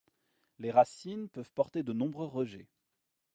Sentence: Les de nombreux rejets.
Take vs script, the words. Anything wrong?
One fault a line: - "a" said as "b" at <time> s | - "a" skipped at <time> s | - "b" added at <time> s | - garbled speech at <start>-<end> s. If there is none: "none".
- "racines peuvent porter" added at 0.7 s